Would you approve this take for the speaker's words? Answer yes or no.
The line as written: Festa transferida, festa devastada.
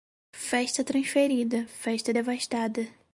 yes